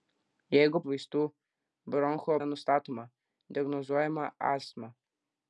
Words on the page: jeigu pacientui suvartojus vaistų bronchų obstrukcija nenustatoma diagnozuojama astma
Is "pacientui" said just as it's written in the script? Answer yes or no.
no